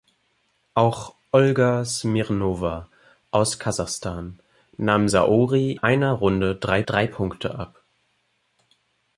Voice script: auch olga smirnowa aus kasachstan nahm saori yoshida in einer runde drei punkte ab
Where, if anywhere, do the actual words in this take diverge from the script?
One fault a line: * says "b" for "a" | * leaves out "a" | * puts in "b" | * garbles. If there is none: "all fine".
* leaves out "yoshida in"
* puts in "drei"